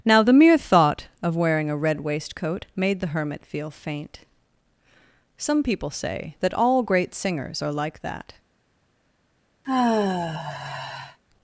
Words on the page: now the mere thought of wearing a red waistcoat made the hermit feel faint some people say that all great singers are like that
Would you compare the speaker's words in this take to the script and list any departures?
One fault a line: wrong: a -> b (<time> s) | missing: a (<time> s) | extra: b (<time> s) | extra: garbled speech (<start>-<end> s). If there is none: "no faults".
no faults